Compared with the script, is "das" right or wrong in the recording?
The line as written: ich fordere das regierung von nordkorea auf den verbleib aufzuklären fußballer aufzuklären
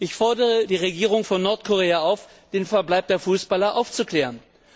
wrong